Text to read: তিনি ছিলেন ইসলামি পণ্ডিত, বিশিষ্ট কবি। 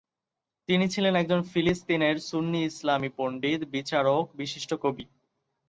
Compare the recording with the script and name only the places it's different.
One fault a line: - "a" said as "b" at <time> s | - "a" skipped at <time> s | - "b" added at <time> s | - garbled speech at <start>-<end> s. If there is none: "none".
- "একজন ফিলিস্তিনের সুন্নি" added at 1.1 s
- "বিচারক" added at 3.6 s